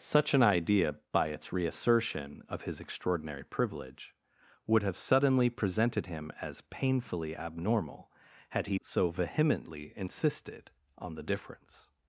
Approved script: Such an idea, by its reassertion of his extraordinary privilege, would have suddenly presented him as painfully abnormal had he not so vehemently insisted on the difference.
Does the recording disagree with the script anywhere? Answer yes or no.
yes